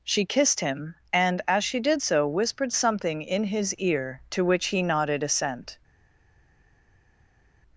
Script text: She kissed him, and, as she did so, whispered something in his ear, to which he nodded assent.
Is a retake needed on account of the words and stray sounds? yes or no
no